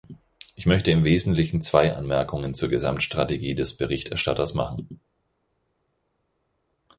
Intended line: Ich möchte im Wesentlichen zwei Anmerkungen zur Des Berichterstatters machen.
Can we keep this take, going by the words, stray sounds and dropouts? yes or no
no